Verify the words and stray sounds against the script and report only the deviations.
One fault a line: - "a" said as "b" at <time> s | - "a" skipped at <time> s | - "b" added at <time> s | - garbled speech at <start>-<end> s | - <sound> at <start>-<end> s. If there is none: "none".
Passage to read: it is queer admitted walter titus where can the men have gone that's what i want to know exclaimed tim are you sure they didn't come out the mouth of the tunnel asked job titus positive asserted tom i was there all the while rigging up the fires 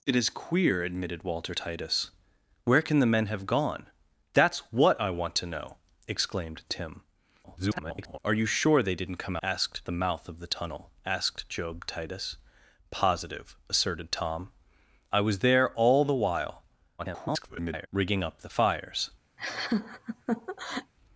- garbled speech at 7.4-8.2 s
- "out" said as "asked" at 9.4 s
- garbled speech at 17.0-17.9 s
- laugh at 19.4-20.9 s